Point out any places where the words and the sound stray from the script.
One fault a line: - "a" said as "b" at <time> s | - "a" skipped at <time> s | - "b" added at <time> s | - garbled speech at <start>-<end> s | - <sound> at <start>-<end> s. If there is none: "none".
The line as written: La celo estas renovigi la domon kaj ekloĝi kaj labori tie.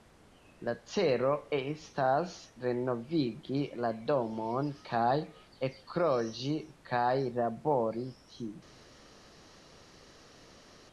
none